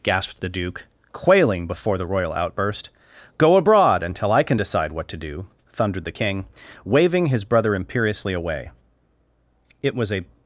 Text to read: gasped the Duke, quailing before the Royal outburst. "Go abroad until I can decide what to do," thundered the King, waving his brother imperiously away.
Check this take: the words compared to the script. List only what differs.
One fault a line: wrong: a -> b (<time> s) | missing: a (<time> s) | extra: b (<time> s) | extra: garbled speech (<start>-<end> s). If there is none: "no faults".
extra: It was a (9.8 s)